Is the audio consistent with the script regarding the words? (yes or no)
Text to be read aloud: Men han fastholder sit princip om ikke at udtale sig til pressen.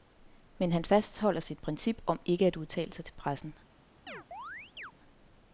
yes